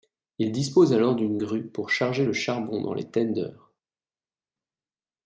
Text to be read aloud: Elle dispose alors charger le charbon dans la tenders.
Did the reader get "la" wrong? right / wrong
wrong